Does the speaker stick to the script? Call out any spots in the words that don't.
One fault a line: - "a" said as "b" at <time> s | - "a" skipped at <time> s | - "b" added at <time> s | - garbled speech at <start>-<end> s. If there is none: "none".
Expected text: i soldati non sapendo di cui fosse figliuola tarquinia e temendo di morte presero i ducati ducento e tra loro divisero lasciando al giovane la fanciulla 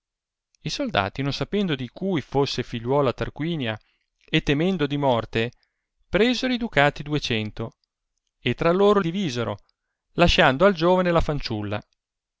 none